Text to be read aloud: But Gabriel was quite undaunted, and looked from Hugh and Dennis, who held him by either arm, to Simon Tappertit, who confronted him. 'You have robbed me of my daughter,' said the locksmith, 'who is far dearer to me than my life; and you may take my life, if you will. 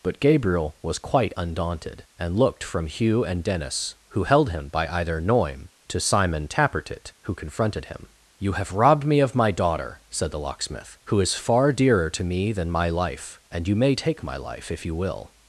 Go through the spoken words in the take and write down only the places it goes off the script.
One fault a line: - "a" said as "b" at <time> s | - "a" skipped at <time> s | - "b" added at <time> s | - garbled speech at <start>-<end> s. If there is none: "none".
- "arm" said as "noim" at 5.2 s